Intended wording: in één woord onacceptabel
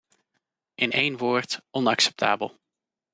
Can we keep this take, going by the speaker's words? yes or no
yes